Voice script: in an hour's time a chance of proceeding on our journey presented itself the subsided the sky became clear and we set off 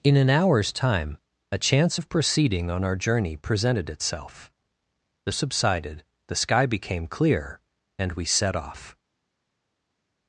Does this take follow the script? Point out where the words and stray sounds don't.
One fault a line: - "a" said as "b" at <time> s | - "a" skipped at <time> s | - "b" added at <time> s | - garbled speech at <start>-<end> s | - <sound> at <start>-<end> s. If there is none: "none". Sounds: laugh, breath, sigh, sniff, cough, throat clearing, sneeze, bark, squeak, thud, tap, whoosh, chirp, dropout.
none